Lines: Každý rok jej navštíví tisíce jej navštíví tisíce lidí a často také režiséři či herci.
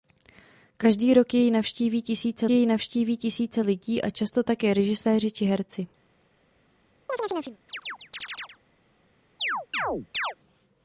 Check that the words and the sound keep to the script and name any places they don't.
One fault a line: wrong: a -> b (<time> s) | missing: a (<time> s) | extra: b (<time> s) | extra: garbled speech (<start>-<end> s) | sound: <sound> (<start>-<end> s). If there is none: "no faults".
sound: chirp (7.1-8.6 s)
sound: chirp (9.4-10.4 s)